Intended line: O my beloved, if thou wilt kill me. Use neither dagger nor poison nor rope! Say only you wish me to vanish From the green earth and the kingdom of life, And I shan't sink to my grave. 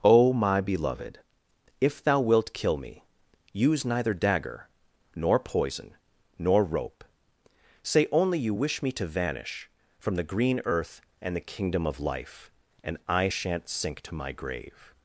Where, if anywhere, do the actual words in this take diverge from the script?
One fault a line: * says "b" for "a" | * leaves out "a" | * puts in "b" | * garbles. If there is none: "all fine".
all fine